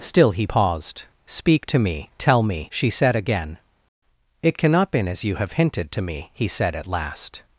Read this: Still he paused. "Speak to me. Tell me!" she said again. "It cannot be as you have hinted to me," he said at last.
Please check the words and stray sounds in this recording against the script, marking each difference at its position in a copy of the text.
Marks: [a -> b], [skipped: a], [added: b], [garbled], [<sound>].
Still he paused. "Speak to me. Tell me!" she said again. "It cannot [be -> been] as you have hinted to me," he said at last.